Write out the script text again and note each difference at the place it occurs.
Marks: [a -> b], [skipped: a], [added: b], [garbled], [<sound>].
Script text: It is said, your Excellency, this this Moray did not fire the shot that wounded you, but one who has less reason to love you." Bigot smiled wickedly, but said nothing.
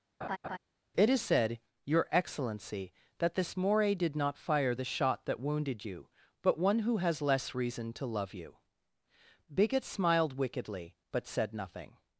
[laugh] It is said, your Excellency, [this -> that] this Moray did not fire the shot that wounded you, but one who has less reason to love you." Bigot smiled wickedly, but said nothing.